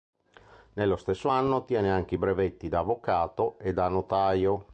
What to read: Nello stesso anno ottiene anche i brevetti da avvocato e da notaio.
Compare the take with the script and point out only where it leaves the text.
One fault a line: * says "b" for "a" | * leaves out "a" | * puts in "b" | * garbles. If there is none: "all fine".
all fine